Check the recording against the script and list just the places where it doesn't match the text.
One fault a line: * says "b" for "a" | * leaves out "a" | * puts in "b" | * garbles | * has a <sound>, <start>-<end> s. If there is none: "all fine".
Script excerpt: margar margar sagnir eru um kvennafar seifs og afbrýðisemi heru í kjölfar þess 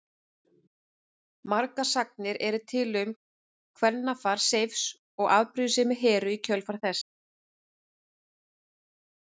* leaves out "margar"
* puts in "til"